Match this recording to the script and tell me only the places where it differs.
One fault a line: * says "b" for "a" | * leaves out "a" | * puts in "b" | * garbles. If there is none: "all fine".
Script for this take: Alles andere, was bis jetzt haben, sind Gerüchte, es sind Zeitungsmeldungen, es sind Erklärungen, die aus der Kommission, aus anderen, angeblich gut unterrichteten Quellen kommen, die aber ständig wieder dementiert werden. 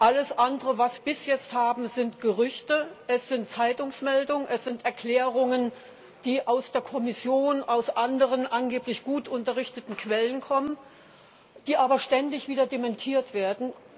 all fine